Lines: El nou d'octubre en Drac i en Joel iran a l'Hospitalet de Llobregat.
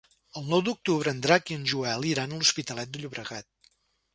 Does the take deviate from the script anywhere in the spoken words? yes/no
no